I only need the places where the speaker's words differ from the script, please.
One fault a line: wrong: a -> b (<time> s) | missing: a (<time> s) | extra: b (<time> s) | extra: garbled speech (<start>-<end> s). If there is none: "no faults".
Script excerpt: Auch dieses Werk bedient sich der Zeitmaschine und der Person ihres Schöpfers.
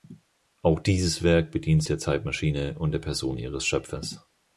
missing: sich (1.8 s)